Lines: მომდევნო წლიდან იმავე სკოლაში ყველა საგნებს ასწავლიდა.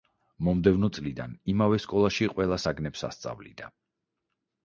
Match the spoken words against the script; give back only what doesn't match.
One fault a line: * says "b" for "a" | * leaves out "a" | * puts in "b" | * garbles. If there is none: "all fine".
all fine